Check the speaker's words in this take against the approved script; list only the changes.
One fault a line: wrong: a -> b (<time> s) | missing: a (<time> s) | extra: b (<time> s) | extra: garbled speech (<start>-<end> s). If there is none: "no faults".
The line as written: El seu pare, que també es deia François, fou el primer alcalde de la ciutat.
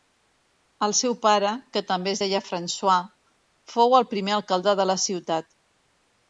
no faults